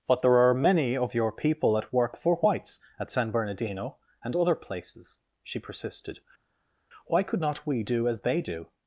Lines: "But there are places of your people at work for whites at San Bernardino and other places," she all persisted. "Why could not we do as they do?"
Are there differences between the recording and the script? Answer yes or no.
yes